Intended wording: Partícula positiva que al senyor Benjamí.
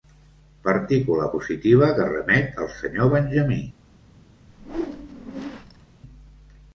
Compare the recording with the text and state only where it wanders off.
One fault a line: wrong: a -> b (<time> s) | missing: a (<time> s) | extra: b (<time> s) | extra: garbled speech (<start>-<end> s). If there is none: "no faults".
extra: remet (2.1 s)